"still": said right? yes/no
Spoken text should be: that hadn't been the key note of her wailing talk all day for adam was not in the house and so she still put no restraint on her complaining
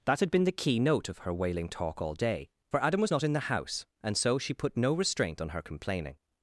no